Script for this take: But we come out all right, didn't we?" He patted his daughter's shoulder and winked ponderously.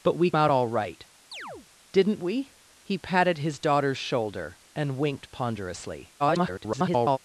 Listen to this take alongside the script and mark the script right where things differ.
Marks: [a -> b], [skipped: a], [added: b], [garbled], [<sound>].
But we [skipped: come] out all right, [chirp] didn't we?" He patted his daughter's shoulder and winked ponderously. [garbled]